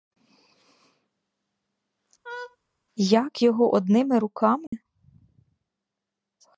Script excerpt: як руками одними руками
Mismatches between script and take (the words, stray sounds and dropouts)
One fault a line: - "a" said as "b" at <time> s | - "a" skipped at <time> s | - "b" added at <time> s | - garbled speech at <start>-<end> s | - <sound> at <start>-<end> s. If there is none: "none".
- laugh at 2.2-2.6 s
- "руками" said as "його" at 3.4 s
- dropout at 4.7-4.7 s